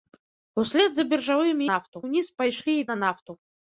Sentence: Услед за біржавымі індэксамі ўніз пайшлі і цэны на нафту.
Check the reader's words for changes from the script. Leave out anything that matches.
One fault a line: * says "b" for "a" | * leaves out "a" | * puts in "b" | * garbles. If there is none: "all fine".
* says "нафту" for "індэксамі"
* leaves out "цэны"